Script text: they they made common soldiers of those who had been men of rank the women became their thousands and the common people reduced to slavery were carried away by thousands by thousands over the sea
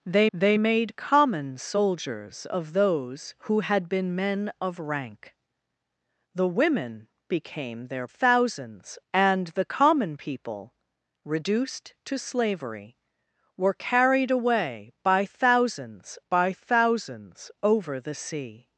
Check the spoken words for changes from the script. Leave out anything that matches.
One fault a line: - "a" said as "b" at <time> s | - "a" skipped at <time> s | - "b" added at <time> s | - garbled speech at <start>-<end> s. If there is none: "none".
none